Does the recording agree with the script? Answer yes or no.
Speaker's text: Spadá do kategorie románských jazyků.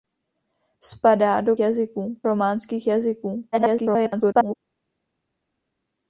no